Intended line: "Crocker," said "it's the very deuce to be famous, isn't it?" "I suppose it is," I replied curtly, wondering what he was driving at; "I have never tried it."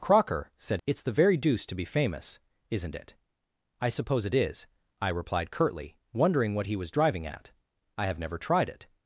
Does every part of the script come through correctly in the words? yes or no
yes